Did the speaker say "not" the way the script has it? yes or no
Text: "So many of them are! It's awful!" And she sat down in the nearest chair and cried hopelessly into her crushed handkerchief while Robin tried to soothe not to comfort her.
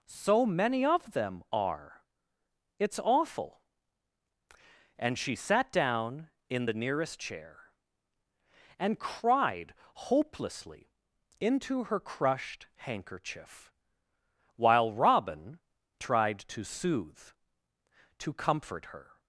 no